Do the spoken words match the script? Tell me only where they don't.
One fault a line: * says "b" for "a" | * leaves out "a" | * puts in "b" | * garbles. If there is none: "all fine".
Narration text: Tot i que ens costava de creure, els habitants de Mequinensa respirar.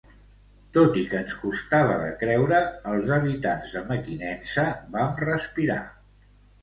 * puts in "vam"